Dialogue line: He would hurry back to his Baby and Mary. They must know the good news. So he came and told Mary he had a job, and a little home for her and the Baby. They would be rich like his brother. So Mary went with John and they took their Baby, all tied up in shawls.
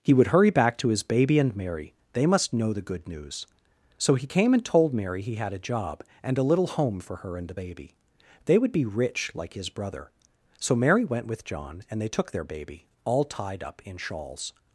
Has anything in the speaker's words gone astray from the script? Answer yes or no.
no